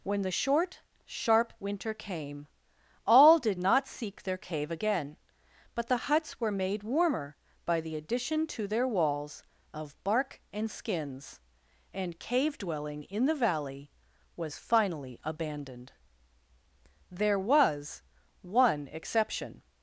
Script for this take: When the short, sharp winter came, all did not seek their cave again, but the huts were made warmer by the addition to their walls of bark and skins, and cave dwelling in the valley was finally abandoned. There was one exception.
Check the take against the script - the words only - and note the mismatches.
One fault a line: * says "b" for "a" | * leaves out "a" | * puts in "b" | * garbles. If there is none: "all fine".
all fine